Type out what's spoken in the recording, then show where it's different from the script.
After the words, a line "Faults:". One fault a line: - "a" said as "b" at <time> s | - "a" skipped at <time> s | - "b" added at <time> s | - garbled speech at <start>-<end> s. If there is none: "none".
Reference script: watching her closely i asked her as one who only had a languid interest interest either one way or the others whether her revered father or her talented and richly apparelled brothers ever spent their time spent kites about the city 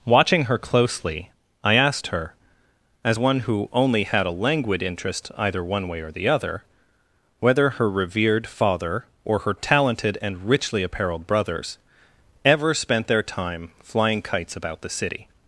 watching her closely i asked her as one who only had a languid interest either one way or the other whether her revered father or her talented and richly apparelled brothers ever spent their time flying kites about the city
Faults:
- "interest" skipped at 5.3 s
- "others" said as "other" at 6.3 s
- "spent" said as "flying" at 13.8 s